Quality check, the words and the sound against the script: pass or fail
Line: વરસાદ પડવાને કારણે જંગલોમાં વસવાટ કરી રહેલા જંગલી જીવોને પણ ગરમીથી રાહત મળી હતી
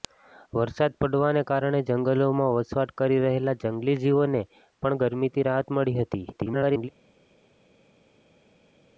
fail